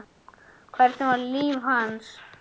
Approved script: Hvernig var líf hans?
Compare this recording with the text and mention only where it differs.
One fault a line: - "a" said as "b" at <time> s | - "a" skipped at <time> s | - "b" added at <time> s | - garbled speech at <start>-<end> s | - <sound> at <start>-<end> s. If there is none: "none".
none